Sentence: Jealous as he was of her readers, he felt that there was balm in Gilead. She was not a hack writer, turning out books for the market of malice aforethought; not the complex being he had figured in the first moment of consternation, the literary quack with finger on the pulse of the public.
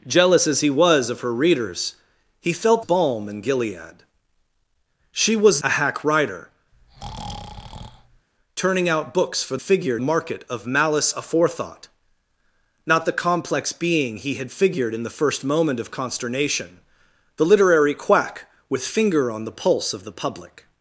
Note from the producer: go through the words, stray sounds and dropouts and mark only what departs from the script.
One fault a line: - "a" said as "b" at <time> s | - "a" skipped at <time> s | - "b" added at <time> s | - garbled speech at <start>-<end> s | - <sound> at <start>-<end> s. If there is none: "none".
- "that there was" skipped at 2.8 s
- "not" skipped at 5.6 s
- breath at 6.7-8.3 s
- "the" said as "figured" at 9.6 s